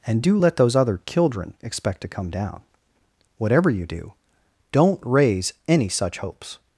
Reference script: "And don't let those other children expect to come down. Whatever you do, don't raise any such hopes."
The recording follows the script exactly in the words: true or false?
false